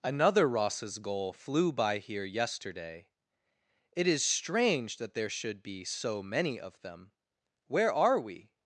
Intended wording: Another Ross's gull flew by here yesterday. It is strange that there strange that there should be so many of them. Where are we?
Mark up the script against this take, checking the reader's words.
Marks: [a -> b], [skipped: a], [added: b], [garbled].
Another Ross's gull flew by here yesterday. It is strange that there [skipped: strange that there] should be so many of them. Where are we?